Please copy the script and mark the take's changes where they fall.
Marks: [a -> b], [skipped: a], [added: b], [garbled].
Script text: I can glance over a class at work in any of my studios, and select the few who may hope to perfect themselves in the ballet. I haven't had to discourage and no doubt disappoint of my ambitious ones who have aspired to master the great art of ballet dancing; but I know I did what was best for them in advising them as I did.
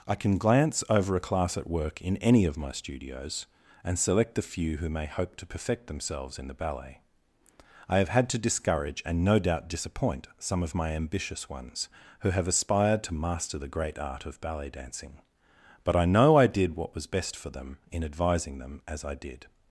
I can glance over a class at work in any of my studios, and select the few who may hope to perfect themselves in the ballet. I [haven't -> have] had to discourage and no doubt disappoint [added: some] of my ambitious ones who have aspired to master the great art of ballet dancing; but I know I did what was best for them in advising them as I did.